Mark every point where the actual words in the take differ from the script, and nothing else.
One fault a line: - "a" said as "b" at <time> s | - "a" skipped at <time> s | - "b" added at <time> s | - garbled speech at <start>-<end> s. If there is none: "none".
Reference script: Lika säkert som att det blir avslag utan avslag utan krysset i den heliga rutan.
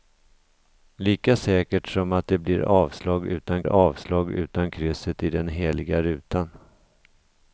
none